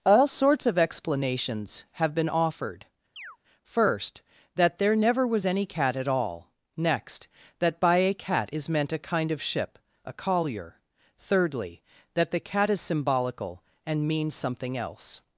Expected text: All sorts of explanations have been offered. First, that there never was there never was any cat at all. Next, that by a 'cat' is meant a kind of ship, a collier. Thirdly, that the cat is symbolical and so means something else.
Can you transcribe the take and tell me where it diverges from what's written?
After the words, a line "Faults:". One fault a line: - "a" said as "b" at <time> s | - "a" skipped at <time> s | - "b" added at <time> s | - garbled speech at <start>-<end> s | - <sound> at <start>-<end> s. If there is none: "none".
All sorts of explanations have been offered. First, that there never was any cat at all. Next, that by a 'cat' is meant a kind of ship, a collier. Thirdly, that the cat is symbolical and means something else.
Faults:
- chirp at 3.2-3.4 s
- "there never was" skipped at 5.4 s
- "so" skipped at 14.1 s